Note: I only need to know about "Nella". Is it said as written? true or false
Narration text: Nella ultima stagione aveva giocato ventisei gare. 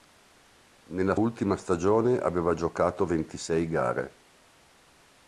true